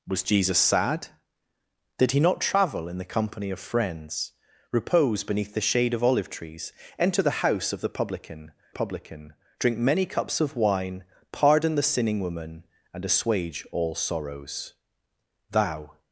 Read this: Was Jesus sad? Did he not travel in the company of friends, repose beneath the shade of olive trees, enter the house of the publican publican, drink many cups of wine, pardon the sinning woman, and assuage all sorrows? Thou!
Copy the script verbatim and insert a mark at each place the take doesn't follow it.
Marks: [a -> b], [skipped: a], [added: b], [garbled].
Was Jesus sad? Did he not travel in the company of friends, repose beneath the shade of olive trees, enter the house of the publican publican, drink many cups of wine, pardon the sinning woman, and assuage all sorrows? Thou!